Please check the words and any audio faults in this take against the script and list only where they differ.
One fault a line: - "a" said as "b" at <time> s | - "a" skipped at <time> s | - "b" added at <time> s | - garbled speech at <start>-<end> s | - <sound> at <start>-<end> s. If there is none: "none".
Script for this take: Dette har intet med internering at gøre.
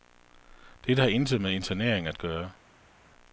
none